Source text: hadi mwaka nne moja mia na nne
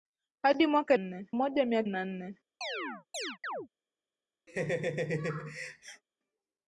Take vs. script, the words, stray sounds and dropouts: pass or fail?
fail